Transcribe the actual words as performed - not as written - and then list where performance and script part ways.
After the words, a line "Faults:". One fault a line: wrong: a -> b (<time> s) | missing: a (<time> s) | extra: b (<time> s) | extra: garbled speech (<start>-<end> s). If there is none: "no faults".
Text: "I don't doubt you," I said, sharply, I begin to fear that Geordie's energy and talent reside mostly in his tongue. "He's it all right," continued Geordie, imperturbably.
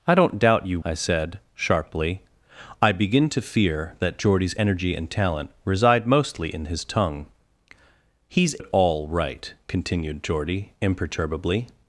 "I don't doubt you," I said, sharply, I begin to fear that Geordie's energy and talent reside mostly in his tongue. "He's it all right," continued Geordie, imperturbably.
Faults:
no faults